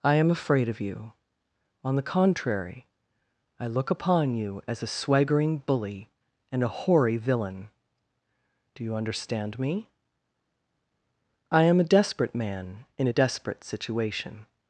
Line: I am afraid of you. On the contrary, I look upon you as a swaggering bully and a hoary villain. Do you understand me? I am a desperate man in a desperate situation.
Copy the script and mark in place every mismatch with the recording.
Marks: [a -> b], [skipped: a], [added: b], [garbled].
I am afraid of you. On the contrary, I look upon you as a swaggering bully and a hoary villain. Do you understand me? I am a desperate man in a desperate situation.